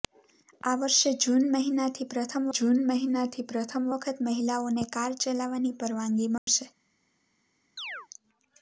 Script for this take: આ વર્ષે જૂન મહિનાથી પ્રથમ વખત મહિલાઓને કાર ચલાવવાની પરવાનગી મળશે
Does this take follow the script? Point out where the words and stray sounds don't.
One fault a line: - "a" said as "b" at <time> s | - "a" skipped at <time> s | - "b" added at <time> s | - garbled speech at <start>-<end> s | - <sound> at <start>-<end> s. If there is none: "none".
- "જૂન મહિનાથી પ્રથમ" added at 2.5 s
- dropout at 6.4-6.5 s
- chirp at 7.8-8.1 s